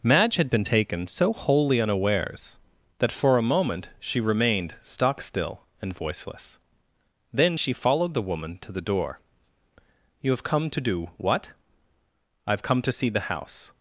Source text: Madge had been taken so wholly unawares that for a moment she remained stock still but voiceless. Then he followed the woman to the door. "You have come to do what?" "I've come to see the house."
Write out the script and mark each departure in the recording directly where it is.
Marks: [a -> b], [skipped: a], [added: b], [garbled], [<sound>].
Madge had been taken so wholly unawares that for a moment she remained stock still [but -> and] voiceless. Then [he -> she] followed the woman to the door. "You have come to do what?" "I've come to see the house."